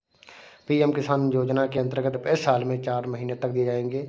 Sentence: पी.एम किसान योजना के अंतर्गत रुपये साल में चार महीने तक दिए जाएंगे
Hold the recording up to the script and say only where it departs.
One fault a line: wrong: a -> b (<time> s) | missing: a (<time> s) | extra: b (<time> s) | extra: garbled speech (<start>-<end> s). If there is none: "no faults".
no faults